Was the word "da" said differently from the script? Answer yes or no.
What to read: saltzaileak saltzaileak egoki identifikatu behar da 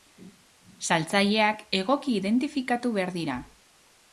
yes